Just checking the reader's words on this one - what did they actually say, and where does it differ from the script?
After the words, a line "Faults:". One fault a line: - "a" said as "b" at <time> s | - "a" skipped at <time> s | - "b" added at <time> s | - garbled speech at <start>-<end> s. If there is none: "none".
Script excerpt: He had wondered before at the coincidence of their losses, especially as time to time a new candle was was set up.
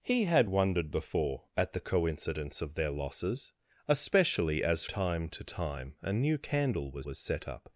He had wondered before at the coincidence of their losses, especially as time to time a new candle was was set up.
Faults:
none